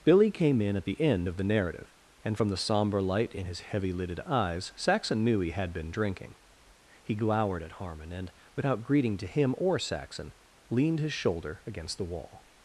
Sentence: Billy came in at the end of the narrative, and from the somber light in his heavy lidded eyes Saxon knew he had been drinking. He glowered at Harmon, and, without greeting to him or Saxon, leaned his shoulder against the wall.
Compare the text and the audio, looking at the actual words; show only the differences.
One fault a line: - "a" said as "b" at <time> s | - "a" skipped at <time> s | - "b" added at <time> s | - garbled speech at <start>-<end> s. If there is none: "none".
none